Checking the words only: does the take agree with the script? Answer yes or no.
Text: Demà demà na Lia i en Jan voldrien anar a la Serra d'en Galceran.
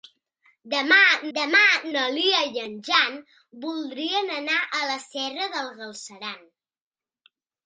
yes